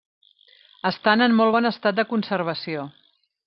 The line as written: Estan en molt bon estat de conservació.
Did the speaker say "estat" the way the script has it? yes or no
yes